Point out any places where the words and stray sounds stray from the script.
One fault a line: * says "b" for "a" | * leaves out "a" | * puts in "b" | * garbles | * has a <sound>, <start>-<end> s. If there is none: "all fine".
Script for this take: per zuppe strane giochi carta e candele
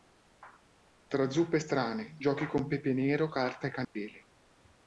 * says "tra" for "per"
* puts in "con pepe nero"
* has a dropout, 3.8-4.0 s